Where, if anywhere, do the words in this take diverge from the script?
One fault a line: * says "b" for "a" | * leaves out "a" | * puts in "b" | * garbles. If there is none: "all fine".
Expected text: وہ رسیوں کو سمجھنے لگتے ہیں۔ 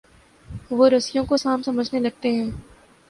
* puts in "سانپ"